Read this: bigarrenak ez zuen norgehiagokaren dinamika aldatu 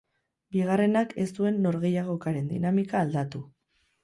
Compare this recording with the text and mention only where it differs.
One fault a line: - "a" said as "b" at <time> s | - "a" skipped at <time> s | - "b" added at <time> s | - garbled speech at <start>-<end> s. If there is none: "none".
none